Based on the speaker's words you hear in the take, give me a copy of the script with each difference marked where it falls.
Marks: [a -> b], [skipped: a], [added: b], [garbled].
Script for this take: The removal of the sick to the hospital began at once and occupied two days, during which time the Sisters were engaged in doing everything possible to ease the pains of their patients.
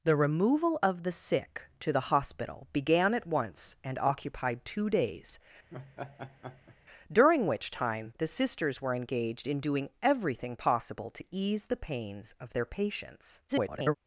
The removal of the sick to the hospital began at once and occupied two days, during which time the Sisters were engaged in doing everything possible to ease the pains of their patients. [garbled]